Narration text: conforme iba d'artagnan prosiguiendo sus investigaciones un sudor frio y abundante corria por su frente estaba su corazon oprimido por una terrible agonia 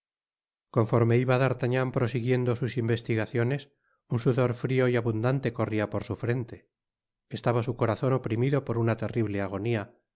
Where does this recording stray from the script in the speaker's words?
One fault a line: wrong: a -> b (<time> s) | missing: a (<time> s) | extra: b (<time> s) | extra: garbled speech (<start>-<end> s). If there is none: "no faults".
no faults